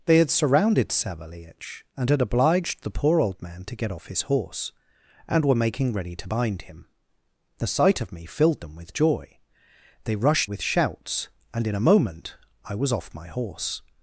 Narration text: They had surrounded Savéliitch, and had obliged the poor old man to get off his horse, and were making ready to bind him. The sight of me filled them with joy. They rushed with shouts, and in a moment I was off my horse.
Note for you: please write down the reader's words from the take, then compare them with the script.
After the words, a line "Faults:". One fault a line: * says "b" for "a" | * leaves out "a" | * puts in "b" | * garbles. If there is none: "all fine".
They had surrounded Savéliitch, and had obliged the poor old man to get off his horse, and were making ready to bind him. The sight of me filled them with joy. They rushed with shouts, and in a moment I was off my horse.
Faults:
all fine